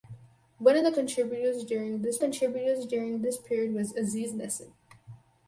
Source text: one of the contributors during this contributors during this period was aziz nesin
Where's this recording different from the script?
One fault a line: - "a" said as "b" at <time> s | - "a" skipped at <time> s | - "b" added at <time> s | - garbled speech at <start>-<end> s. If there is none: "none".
none